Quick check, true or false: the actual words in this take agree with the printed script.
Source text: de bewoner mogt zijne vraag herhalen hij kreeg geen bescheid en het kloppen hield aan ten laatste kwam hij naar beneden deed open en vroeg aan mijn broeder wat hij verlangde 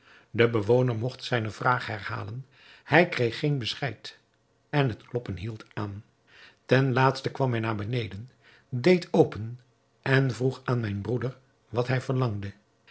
true